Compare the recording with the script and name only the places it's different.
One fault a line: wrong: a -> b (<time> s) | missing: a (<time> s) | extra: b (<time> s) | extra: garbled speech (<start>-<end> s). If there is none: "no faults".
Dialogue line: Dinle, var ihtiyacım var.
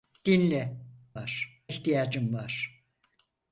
no faults